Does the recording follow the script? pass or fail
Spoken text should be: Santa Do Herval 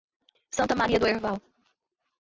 fail